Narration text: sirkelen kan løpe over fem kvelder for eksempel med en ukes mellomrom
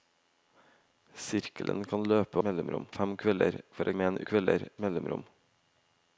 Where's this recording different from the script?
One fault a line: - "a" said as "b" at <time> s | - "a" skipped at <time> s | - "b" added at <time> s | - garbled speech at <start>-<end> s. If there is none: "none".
- "over" said as "mellomrom" at 2.5 s
- "eksempel" skipped at 3.9 s
- "ukes" said as "kvelder" at 4.3 s